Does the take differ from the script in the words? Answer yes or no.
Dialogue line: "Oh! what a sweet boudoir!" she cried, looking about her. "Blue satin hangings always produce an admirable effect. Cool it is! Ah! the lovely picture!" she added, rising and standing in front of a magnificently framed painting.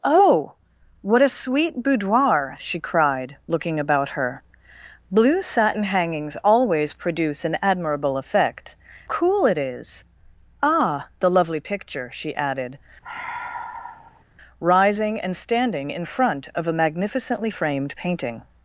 no